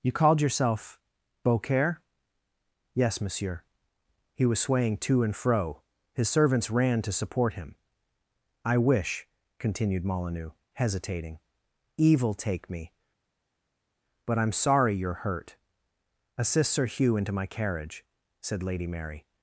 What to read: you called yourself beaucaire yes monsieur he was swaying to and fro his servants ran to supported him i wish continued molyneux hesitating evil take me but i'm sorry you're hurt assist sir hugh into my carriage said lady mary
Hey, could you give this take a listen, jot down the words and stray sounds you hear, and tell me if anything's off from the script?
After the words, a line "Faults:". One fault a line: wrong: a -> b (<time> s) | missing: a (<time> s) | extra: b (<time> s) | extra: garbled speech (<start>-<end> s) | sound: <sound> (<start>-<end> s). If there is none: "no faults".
you called yourself beaucaire yes monsieur he was swaying to and fro his servants ran to support him i wish continued molyneux hesitating evil take me but i'm sorry you're hurt assist sir hugh into my carriage said lady mary
Faults:
wrong: supported -> support (7.1 s)